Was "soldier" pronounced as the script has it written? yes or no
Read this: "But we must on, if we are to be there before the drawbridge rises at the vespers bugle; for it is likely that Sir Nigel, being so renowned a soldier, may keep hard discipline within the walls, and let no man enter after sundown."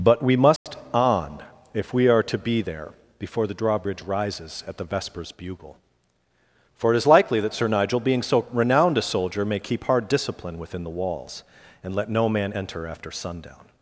yes